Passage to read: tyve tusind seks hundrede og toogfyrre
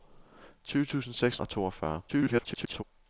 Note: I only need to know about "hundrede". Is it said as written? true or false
false